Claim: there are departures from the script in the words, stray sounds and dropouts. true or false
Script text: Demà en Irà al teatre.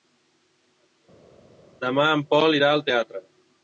true